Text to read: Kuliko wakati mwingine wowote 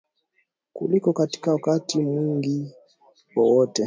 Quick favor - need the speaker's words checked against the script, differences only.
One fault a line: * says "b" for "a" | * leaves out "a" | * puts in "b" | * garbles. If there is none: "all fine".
* puts in "katika"